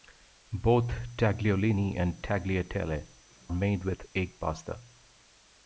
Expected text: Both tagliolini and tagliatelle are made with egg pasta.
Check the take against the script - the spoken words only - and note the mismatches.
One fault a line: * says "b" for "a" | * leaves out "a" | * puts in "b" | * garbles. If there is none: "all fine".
* leaves out "are"